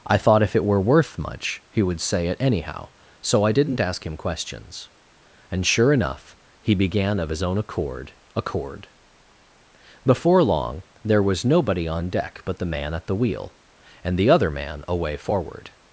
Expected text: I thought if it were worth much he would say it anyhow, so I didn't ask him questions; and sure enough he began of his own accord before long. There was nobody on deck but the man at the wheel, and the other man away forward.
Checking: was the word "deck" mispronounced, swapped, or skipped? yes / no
no